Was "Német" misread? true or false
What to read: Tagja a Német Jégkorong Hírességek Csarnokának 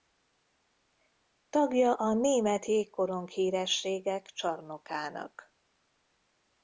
false